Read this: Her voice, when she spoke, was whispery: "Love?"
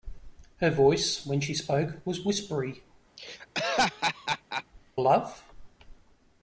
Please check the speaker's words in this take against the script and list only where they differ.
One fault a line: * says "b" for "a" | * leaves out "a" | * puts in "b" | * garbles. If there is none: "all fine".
all fine